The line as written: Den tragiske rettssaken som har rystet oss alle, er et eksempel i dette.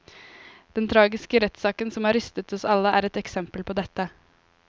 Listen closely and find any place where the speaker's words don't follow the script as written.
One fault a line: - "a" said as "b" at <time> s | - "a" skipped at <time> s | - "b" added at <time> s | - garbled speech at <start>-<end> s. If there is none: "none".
- "i" said as "på" at 3.6 s